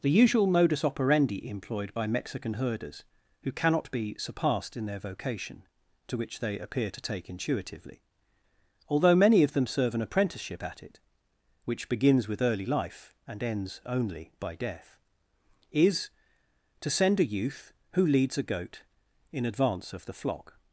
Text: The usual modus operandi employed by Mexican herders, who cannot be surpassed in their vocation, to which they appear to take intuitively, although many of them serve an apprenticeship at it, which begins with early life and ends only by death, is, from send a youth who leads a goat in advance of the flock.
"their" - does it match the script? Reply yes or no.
yes